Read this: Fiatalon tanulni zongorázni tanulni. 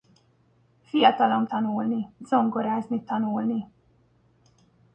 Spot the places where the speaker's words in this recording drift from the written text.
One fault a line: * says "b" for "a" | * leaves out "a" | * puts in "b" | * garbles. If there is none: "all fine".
all fine